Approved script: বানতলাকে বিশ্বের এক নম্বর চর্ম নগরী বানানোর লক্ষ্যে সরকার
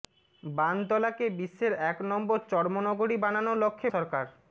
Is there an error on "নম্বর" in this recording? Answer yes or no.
no